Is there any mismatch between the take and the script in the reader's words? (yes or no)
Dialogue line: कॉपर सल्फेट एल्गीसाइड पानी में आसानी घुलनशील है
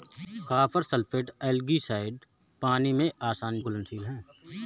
no